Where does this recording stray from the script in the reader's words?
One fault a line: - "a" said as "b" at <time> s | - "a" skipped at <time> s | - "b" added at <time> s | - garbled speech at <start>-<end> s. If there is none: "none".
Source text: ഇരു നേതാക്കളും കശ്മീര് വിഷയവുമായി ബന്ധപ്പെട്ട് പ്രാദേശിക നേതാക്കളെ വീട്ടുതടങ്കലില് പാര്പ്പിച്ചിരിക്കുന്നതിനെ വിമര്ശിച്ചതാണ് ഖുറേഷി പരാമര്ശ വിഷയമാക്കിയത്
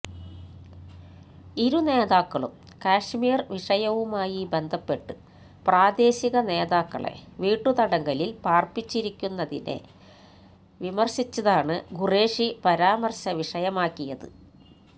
none